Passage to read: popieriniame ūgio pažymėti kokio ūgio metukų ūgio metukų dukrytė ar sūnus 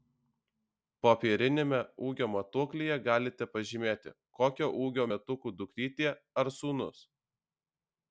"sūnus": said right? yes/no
yes